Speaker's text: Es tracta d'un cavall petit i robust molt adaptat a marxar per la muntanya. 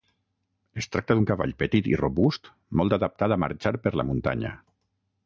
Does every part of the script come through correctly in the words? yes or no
yes